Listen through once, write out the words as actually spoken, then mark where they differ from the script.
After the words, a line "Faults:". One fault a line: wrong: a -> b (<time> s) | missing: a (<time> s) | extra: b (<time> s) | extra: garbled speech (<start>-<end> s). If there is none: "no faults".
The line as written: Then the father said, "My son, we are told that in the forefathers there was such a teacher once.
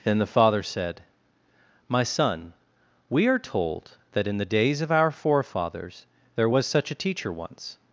Then the father said, "My son, we are told that in the days of our forefathers there was such a teacher once.
Faults:
extra: days of our (4.5 s)